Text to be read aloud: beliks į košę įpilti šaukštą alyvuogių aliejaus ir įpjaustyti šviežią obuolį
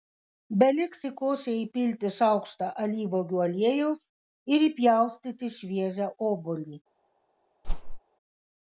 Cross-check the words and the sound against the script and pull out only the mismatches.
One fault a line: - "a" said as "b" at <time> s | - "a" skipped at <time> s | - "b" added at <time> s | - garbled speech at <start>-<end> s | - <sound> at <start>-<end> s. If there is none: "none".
- whoosh at 7.6-8.0 s